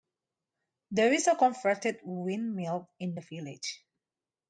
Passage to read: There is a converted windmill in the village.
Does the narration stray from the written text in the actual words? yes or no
no